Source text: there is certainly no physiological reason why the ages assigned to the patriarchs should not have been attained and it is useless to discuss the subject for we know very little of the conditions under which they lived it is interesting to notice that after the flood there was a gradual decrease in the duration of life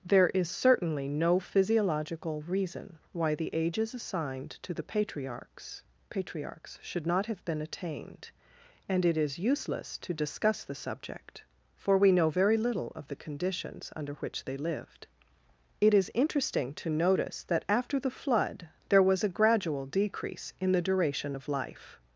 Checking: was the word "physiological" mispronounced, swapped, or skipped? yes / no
no